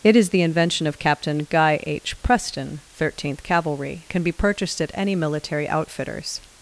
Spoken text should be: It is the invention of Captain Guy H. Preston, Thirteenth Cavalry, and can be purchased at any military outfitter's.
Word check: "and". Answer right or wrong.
wrong